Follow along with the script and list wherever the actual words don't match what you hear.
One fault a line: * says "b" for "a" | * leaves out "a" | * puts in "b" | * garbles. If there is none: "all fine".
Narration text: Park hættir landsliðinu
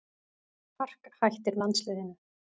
all fine